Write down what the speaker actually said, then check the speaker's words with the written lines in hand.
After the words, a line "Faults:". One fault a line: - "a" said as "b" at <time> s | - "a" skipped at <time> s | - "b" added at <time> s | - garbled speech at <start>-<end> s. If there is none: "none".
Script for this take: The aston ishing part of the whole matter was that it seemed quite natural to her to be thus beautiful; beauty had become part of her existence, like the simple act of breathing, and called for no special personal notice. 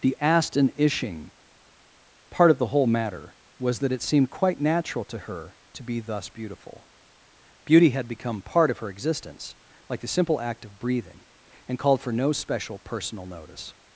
The aston ishing part of the whole matter was that it seemed quite natural to her to be thus beautiful; beauty had become part of her existence, like the simple act of breathing, and called for no special personal notice.
Faults:
none